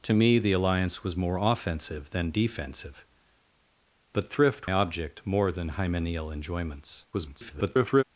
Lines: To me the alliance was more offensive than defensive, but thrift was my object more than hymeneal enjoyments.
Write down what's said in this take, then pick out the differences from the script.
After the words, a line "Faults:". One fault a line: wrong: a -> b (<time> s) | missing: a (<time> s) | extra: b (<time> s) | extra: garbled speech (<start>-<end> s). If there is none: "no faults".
To me the alliance was more offensive than defensive, but thrift object more than hymeneal enjoyments. [garbled]
Faults:
missing: was my (4.7 s)
extra: garbled speech (7.1-8.0 s)